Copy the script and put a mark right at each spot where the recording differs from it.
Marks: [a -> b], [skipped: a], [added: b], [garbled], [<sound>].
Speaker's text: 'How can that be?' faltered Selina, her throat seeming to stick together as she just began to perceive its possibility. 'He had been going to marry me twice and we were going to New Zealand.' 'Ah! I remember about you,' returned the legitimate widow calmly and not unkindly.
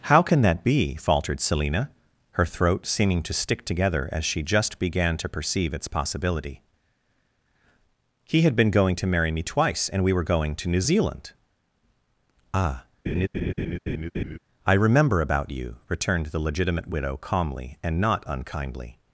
'How can that be?' faltered Selina, her throat seeming to stick together as she just began to perceive its possibility. 'He had been going to marry me twice and we were going to New Zealand.' 'Ah! [laugh] I remember about you,' returned the legitimate widow calmly and not unkindly.